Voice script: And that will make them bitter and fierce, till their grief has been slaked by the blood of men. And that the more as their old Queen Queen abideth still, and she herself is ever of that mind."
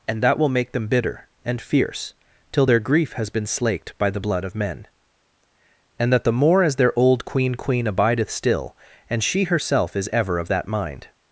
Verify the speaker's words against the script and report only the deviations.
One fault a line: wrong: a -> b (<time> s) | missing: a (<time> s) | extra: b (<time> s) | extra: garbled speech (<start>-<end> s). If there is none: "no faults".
no faults